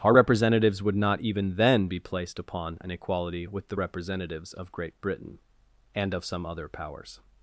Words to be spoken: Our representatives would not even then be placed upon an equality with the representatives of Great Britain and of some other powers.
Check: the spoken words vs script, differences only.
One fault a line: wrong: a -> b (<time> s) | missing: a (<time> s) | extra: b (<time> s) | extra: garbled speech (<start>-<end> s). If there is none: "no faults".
no faults